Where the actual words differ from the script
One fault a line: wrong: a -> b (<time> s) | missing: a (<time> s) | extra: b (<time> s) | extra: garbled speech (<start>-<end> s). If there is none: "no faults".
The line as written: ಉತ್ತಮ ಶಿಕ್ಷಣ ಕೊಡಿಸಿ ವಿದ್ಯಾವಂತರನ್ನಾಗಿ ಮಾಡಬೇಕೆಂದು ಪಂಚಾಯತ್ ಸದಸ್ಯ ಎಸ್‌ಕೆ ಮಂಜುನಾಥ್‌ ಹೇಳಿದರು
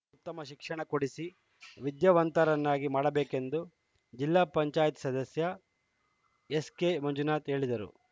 extra: ಜಿಲ್ಲಾ (4.1 s)